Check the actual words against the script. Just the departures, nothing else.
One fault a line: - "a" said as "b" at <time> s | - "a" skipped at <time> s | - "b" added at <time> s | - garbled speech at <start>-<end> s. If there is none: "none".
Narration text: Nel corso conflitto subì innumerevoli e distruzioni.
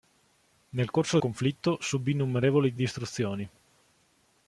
none